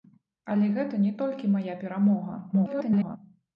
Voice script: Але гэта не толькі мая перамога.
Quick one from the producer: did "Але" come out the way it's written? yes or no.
yes